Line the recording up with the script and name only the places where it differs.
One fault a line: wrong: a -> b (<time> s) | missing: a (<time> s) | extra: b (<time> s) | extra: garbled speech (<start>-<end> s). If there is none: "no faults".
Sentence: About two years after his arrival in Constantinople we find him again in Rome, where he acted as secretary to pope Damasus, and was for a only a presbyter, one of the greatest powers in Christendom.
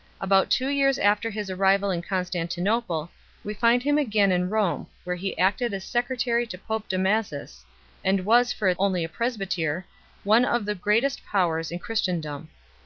no faults